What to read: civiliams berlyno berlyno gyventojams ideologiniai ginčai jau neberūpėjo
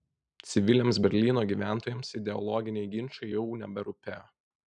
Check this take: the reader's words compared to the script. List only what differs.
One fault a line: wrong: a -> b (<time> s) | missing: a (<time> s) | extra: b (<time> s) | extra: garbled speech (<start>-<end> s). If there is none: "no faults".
missing: berlyno (1.4 s)